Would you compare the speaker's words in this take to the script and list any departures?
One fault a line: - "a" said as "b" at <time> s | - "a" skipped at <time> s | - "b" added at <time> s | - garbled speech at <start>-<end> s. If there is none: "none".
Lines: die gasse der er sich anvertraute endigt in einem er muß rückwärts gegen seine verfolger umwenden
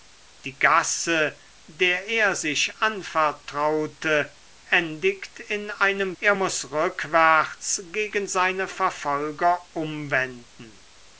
none